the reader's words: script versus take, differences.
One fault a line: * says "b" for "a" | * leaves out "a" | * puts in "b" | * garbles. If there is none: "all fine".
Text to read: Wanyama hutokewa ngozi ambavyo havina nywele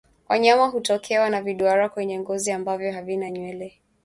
* puts in "na viduara kwenye"